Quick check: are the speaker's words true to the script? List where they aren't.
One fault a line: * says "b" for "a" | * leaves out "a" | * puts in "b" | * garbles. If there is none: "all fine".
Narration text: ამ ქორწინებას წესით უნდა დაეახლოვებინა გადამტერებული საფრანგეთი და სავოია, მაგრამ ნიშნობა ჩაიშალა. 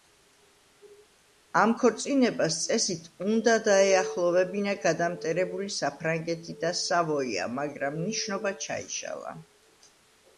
all fine